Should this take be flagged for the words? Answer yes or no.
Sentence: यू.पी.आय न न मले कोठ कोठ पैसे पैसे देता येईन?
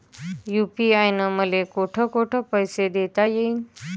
yes